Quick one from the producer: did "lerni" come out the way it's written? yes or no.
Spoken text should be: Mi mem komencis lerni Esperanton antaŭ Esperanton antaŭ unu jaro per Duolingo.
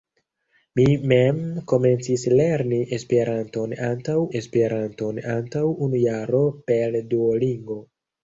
yes